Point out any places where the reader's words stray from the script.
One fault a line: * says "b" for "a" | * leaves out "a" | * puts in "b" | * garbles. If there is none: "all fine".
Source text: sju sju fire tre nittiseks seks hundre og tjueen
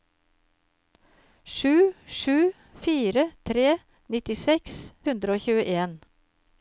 * leaves out "seks"